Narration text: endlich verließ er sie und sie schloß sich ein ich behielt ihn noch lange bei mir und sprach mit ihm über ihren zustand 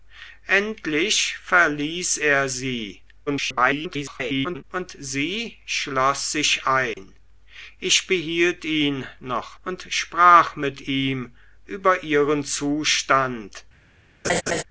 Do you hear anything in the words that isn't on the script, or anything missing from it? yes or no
yes